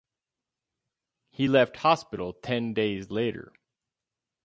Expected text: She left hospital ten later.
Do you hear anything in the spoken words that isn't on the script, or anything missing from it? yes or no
yes